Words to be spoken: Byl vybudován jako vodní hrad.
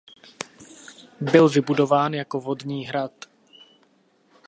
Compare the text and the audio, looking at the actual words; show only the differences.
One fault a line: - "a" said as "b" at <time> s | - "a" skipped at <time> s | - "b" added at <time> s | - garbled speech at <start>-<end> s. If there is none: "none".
none